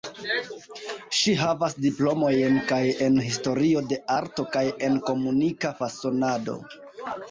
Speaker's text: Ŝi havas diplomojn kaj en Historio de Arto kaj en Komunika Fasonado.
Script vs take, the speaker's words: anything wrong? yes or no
no